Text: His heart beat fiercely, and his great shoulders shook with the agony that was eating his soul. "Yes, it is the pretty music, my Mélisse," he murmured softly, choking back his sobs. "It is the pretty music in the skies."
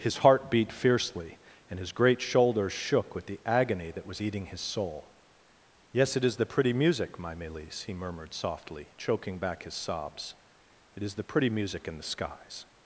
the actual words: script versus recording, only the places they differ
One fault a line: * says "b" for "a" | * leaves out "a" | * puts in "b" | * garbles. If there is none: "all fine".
all fine